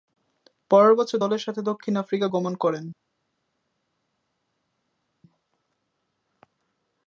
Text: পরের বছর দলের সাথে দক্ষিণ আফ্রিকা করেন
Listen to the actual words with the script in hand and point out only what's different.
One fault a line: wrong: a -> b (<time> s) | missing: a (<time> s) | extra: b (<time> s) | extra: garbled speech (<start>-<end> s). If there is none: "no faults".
extra: গমন (2.2 s)